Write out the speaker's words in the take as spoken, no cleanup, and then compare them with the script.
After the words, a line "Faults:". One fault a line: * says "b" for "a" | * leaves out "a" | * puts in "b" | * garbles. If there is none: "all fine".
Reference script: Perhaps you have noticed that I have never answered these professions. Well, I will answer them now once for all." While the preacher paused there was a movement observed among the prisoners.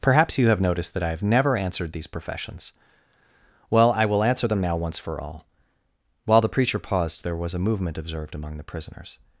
Perhaps you have noticed that I have never answered these professions. Well, I will answer them now once for all." While the preacher paused there was a movement observed among the prisoners.
Faults:
all fine